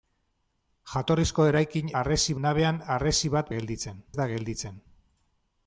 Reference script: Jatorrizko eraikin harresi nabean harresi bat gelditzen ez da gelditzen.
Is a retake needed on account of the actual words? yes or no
no